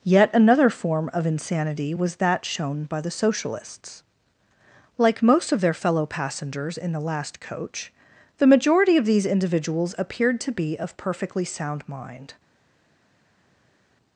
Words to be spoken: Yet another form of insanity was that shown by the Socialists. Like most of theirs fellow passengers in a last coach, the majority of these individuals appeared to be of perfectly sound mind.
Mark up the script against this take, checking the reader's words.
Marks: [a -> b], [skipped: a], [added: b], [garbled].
Yet another form of insanity was that shown by the Socialists. Like most of [theirs -> their] fellow passengers in [a -> the] last coach, the majority of these individuals appeared to be of perfectly sound mind.